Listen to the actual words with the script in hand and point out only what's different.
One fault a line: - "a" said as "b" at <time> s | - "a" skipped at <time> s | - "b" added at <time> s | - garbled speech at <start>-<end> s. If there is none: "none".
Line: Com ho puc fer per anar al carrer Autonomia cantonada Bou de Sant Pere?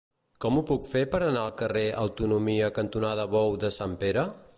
none